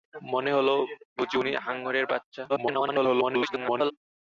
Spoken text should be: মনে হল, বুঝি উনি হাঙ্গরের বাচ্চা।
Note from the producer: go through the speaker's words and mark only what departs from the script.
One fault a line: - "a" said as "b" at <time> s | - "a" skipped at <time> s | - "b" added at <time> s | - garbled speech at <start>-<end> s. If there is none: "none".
- garbled speech at 2.5-3.9 s